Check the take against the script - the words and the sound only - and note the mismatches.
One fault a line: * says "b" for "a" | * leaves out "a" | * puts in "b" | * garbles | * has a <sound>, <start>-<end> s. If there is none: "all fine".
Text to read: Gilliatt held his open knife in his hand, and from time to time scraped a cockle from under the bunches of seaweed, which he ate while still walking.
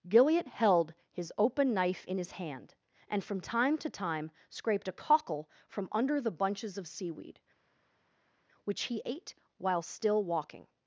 all fine